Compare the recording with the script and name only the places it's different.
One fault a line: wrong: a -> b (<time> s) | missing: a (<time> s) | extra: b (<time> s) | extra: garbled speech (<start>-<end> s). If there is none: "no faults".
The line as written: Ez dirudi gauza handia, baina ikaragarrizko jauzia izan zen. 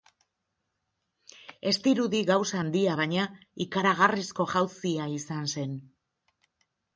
no faults